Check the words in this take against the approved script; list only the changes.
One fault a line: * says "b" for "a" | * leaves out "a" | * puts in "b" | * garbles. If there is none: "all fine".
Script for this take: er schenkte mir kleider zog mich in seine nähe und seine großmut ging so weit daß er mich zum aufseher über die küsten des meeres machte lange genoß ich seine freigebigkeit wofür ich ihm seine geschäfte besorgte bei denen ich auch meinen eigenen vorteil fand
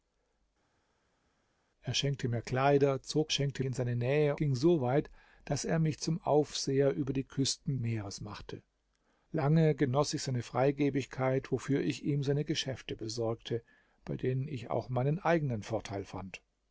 * says "schenkte" for "mich"
* leaves out "und seine großmut"
* leaves out "des"